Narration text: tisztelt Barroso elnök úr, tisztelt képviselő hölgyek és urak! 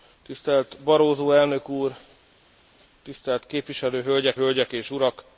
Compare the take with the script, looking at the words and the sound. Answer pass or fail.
fail